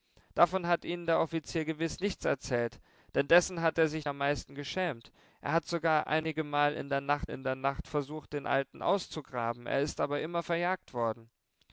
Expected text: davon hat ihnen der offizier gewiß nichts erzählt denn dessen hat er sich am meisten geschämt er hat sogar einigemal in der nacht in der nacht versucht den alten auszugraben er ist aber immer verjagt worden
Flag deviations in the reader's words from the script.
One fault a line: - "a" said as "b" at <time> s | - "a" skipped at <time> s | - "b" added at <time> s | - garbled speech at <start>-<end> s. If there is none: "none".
none